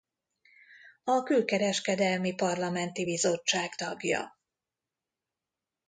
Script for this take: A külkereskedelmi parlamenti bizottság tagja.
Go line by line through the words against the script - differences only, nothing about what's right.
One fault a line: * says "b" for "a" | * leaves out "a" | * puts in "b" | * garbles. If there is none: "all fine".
all fine